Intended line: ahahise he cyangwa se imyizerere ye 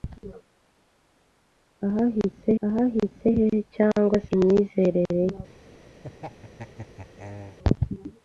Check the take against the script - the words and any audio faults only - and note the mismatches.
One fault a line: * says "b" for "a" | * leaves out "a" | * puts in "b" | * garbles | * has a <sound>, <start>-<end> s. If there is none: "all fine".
* puts in "ahahise"
* leaves out "se"
* has a laugh, 6.0-7.6 s